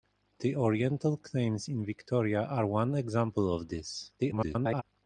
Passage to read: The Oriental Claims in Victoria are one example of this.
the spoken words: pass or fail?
fail